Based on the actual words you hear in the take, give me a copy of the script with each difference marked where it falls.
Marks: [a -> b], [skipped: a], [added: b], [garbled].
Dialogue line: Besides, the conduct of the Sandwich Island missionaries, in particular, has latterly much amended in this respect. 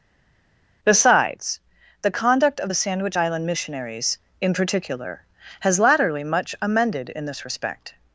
Besides, the conduct of the Sandwich Island missionaries, in particular, has latterly much amended in this respect.